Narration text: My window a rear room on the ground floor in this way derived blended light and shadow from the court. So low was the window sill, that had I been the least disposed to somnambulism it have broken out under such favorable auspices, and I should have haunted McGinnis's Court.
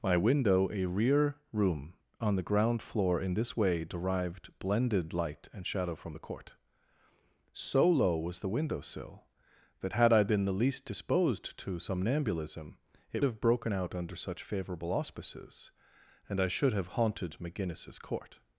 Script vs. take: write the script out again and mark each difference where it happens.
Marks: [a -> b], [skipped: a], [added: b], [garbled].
My window a rear room on the ground floor in this way derived blended light and shadow from the court. So low was the window sill, that had I been the least disposed to somnambulism it have broken out under such favorable auspices, and I should have haunted McGinnis's Court.